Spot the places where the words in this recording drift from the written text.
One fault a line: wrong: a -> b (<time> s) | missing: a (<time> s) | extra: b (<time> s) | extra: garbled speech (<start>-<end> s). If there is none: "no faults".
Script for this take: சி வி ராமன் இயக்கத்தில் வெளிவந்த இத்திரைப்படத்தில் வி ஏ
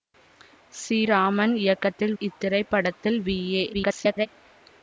missing: வி (1.0 s)
missing: வெளிவந்த (2.1 s)
extra: garbled speech (3.7-4.3 s)